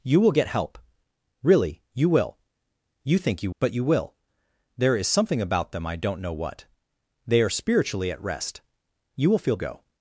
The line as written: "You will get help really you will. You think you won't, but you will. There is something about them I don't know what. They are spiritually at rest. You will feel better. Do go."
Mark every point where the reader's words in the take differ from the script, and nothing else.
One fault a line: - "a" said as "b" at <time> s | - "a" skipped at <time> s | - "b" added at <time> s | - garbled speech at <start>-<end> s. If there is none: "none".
- "won't" skipped at 3.5 s
- "better Do" skipped at 9.6 s